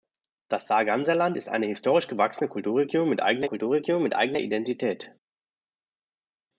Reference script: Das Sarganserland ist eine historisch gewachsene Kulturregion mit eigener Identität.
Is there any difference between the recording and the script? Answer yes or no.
yes